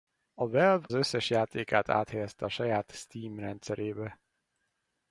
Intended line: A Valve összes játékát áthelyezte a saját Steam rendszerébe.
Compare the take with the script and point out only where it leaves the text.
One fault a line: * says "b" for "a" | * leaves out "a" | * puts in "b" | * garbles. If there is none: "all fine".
all fine